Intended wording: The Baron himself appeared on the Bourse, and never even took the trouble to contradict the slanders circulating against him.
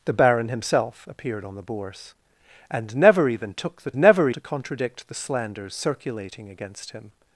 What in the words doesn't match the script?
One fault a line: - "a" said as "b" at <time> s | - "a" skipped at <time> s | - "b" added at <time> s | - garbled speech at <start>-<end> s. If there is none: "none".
- "trouble" said as "never" at 4.0 s